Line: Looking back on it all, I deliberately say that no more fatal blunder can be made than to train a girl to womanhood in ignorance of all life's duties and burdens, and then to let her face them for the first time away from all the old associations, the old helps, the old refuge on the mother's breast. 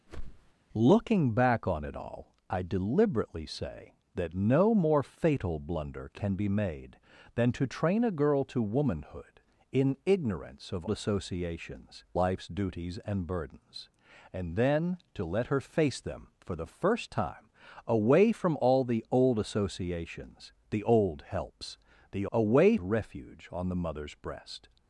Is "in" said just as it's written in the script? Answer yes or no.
yes